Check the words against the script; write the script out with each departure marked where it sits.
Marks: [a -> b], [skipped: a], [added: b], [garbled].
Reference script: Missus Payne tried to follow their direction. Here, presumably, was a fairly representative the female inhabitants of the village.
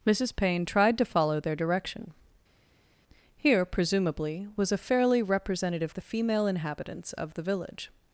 Missus Payne tried to follow their direction. Here, presumably, was a fairly representative the female inhabitants of the village.